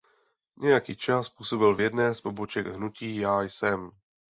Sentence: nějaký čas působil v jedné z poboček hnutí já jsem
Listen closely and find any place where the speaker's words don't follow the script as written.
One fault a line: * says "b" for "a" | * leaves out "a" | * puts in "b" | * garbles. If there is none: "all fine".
all fine